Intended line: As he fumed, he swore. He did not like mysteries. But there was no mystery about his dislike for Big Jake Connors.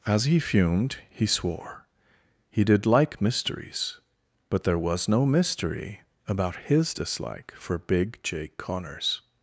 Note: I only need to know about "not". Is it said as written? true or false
false